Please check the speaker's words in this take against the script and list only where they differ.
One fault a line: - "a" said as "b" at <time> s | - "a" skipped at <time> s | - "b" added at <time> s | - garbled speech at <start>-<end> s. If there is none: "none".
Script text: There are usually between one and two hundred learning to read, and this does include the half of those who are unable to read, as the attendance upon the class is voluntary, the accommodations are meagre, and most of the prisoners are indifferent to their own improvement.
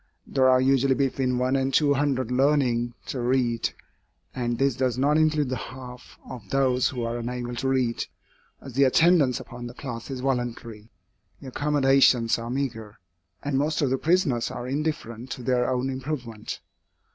- "not" added at 5.0 s